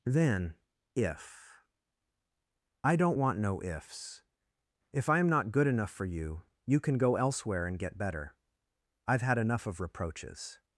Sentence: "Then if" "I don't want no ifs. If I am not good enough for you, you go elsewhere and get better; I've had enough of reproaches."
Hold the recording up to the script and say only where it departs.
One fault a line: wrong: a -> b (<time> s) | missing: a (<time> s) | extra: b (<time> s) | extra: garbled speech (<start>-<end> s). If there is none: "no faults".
extra: can (6.8 s)